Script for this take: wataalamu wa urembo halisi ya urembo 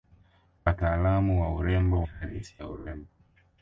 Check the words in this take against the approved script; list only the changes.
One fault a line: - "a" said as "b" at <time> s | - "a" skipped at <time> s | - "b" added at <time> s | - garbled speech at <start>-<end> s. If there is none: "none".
none